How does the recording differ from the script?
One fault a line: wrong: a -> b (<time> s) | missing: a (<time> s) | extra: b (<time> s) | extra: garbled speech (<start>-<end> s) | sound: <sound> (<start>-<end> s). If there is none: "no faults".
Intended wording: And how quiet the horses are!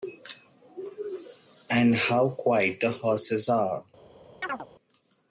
sound: chirp (4.4-4.7 s)